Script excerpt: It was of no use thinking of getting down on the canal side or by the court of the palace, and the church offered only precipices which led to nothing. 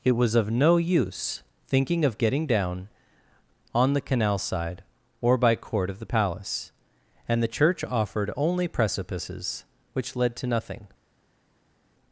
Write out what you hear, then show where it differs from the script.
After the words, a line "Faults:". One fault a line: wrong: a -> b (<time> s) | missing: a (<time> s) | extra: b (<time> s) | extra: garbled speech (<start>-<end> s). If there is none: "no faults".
It was of no use thinking of getting down on the canal side or by court of the palace, and the church offered only precipices which led to nothing.
Faults:
missing: the (5.5 s)